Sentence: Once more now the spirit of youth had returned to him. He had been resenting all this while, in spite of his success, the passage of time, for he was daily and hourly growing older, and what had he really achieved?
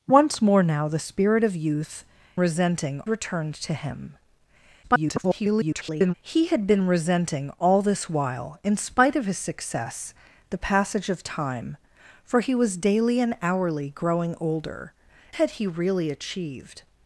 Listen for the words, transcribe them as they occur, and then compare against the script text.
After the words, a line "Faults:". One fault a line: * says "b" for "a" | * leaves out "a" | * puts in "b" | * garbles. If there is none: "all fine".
Once more now the spirit of youth resenting returned to him. [garbled] He had been resenting all this while, in spite of his success, the passage of time, for he was daily and hourly growing older, had he really achieved?
Faults:
* says "resenting" for "had"
* garbles
* leaves out "and what"